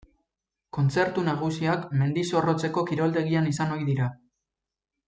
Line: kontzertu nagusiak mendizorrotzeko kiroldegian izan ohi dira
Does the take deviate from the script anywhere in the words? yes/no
no